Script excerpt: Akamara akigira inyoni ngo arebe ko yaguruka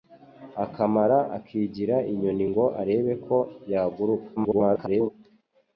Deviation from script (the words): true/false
true